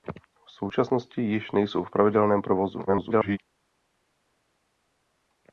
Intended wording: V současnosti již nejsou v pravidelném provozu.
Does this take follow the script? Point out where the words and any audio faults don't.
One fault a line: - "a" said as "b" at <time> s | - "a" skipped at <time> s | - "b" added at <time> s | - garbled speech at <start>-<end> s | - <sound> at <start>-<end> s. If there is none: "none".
- garbled speech at 2.9-3.4 s